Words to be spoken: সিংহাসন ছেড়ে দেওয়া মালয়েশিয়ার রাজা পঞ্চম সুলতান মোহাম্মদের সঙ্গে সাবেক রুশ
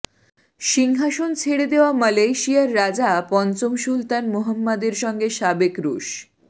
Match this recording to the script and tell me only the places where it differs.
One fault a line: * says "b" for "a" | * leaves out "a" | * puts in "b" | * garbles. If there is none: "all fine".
all fine